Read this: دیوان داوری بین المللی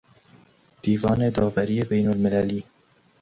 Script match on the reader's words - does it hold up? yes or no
yes